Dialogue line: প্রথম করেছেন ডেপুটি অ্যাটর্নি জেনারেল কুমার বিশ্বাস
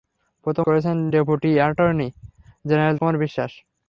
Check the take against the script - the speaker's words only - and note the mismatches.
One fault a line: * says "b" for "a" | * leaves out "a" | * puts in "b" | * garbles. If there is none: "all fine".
all fine